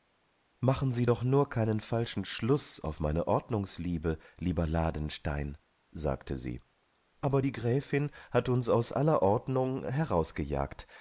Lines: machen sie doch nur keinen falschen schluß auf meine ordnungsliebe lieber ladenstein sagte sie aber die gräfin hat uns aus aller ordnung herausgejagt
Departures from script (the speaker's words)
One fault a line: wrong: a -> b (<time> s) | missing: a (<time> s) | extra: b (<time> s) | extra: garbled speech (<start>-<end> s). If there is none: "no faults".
no faults